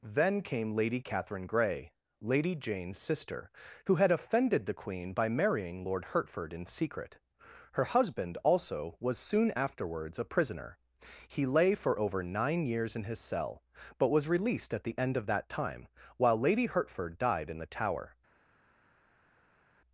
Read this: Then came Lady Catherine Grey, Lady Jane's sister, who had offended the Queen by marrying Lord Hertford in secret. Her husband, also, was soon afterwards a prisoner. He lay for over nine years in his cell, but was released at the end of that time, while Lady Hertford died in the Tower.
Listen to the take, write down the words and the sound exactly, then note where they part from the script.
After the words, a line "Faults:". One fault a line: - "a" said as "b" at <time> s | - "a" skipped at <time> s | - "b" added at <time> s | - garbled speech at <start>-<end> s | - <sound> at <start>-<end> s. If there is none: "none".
Then came Lady Catherine Grey, Lady Jane's sister, who had offended the Queen by marrying Lord Hertford in secret. Her husband, also, was soon afterwards a prisoner. He lay for over nine years in his cell, but was released at the end of that time, while Lady Hertford died in the Tower.
Faults:
none